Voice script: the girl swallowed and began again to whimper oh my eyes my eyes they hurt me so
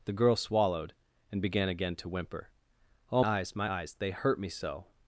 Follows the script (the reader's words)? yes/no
no